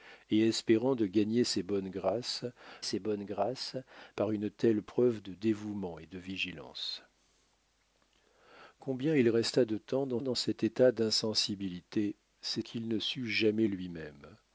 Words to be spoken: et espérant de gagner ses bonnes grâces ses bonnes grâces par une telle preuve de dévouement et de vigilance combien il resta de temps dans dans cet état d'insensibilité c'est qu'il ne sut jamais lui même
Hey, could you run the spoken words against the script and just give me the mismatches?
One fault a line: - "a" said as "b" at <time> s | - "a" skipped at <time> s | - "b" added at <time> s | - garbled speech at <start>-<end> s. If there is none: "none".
none